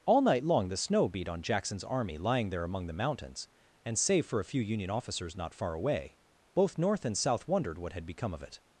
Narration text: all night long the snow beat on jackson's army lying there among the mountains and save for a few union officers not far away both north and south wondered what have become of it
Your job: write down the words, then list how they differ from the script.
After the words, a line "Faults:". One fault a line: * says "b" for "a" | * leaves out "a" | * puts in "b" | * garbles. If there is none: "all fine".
all night long the snow beat on jackson's army lying there among the mountains and save for a few union officers not far away both north and south wondered what had become of it
Faults:
* says "had" for "have"